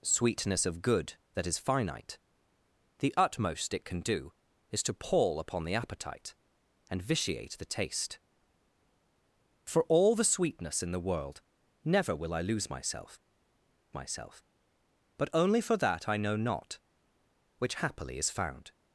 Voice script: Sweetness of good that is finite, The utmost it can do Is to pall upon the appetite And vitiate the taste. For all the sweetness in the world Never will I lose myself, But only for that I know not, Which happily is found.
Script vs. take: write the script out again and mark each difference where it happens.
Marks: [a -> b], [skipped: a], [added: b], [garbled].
Sweetness of good that is finite, The utmost it can do Is to pall upon the appetite And vitiate the taste. For all the sweetness in the world Never will I lose myself, [added: myself] But only for that I know not, Which happily is found.